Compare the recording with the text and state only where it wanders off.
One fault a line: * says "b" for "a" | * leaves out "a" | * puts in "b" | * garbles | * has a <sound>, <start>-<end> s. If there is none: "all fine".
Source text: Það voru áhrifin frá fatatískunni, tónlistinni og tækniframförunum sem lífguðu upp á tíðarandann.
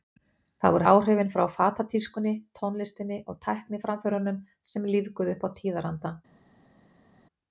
all fine